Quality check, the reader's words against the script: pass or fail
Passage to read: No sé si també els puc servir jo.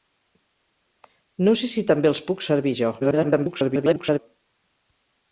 fail